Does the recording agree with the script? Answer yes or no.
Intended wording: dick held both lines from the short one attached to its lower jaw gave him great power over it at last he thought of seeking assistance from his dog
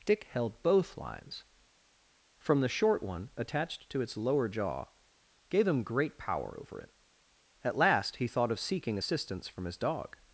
yes